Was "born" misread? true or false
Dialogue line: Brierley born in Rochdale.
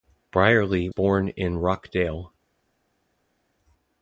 false